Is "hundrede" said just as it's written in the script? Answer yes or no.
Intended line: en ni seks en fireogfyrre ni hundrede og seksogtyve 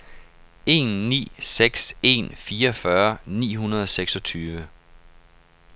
yes